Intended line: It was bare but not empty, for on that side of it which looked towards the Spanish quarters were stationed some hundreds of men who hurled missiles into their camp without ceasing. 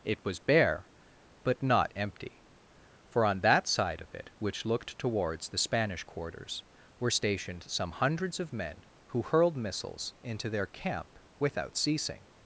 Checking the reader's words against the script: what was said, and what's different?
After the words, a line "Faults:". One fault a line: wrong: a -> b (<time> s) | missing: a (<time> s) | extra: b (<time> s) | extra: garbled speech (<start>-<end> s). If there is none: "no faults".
It was bare but not empty, for on that side of it which looked towards the Spanish quarters were stationed some hundreds of men who hurled missiles into their camp without ceasing.
Faults:
no faults